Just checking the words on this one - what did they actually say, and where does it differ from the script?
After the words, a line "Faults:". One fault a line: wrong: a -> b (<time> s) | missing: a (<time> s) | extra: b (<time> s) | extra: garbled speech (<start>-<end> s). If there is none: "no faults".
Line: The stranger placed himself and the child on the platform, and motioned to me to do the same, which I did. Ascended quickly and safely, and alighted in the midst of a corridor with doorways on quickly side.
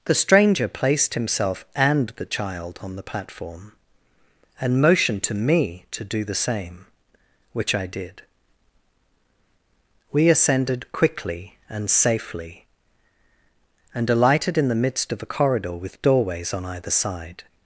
The stranger placed himself and the child on the platform, and motioned to me to do the same, which I did. We ascended quickly and safely, and alighted in the midst of a corridor with doorways on either side.
Faults:
extra: We (10.1 s)
wrong: quickly -> either (16.6 s)